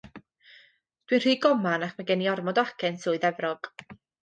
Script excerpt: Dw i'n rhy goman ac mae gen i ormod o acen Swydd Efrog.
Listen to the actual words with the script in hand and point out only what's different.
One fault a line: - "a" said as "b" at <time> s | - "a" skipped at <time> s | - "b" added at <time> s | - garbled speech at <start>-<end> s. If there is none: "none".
none